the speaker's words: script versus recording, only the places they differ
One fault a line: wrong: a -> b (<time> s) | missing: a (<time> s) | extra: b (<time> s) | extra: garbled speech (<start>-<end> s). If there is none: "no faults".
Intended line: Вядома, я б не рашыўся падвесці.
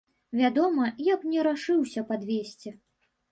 no faults